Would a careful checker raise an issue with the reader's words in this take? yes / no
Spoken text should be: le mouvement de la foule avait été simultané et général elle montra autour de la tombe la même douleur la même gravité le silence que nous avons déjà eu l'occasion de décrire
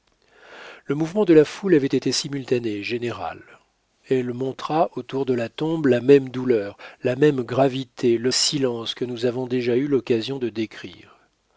no